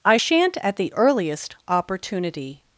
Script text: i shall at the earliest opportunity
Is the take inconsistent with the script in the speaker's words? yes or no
yes